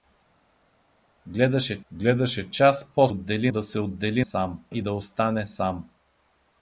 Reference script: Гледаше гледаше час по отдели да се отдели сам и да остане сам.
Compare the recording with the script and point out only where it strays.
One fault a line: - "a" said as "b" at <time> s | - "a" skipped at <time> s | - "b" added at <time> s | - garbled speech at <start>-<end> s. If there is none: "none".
none